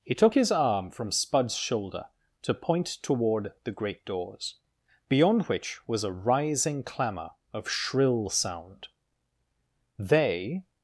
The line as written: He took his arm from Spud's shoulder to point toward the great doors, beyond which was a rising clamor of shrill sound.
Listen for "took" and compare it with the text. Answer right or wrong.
right